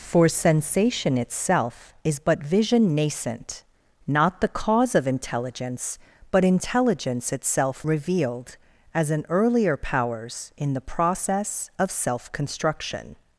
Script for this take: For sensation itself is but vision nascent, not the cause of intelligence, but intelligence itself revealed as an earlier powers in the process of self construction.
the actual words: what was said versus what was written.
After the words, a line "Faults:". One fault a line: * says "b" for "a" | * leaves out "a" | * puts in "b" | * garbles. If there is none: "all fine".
For sensation itself is but vision nascent, not the cause of intelligence, but intelligence itself revealed as an earlier powers in the process of self construction.
Faults:
all fine